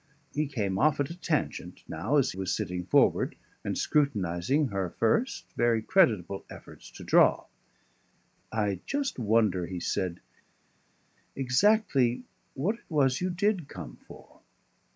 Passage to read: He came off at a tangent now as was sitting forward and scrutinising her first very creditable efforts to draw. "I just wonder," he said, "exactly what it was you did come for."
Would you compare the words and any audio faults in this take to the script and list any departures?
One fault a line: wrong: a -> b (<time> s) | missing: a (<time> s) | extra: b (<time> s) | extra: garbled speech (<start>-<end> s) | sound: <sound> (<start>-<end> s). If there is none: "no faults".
no faults